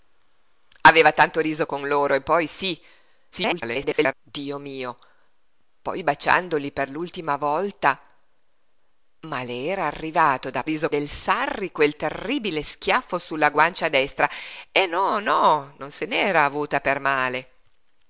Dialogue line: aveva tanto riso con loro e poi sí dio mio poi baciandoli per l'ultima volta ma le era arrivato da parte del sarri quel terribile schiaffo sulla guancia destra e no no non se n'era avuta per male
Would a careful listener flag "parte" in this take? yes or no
yes